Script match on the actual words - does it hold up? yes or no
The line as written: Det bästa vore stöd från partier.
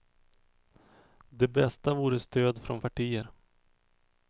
yes